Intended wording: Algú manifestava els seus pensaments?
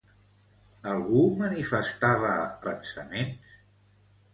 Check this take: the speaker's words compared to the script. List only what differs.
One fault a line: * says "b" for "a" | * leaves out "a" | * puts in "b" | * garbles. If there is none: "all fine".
* leaves out "els seus"